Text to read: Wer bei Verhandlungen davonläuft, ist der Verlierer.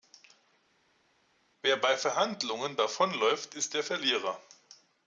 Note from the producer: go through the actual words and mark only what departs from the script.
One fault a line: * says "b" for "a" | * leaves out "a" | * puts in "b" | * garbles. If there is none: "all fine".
all fine